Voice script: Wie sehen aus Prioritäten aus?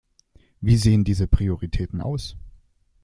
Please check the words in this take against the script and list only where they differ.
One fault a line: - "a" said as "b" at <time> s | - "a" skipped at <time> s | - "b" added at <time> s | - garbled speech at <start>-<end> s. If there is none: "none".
- "aus" said as "diese" at 1.0 s